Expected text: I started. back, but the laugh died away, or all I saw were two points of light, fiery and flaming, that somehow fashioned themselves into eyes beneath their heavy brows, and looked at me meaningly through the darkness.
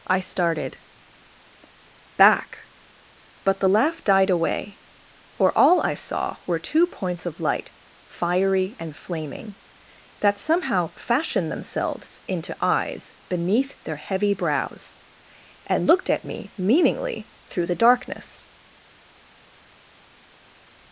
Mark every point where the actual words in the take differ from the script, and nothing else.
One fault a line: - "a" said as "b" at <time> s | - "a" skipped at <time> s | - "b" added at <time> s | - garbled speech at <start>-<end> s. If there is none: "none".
none